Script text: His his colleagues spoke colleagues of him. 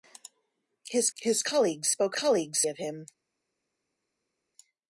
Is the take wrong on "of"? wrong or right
right